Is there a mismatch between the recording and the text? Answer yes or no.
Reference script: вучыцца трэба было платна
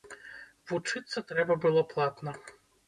no